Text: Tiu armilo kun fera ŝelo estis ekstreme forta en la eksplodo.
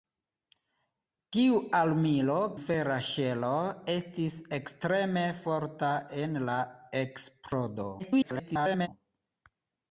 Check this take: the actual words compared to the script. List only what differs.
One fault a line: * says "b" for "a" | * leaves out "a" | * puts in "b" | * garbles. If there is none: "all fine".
* leaves out "kun"
* garbles